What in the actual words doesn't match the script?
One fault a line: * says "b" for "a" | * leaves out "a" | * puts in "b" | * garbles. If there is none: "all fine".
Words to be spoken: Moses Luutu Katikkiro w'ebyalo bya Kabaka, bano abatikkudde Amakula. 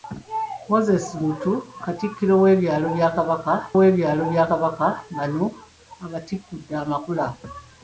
* puts in "w'ebyalo bya Kabaka"